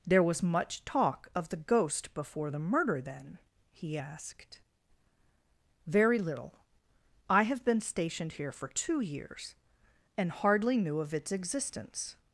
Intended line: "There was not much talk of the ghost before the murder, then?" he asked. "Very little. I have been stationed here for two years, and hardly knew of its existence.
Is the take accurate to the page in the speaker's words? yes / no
no